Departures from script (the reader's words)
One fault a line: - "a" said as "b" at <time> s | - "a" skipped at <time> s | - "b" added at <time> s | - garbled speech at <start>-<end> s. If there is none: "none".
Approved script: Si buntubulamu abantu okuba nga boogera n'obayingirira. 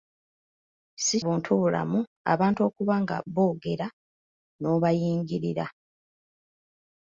none